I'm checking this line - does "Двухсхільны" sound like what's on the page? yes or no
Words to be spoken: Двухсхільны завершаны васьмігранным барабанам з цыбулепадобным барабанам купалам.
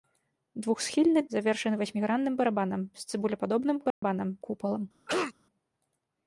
yes